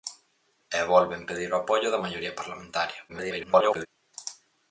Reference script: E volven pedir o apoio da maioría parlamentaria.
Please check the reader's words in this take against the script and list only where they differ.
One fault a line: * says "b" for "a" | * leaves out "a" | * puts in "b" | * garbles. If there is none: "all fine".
* garbles